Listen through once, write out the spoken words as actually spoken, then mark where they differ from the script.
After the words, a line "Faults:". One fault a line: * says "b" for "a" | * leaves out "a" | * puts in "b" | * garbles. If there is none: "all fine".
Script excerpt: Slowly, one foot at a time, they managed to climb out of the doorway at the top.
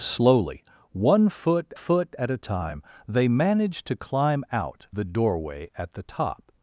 Slowly, one foot foot at a time, they managed to climb out the doorway at the top.
Faults:
* puts in "foot"
* leaves out "of"